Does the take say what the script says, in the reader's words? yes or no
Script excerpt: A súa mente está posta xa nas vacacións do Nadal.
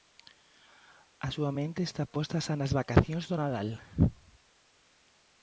yes